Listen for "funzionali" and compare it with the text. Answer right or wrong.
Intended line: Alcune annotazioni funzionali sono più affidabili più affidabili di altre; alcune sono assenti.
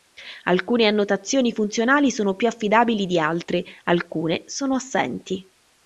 right